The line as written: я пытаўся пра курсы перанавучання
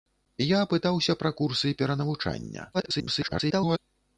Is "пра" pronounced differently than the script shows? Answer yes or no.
no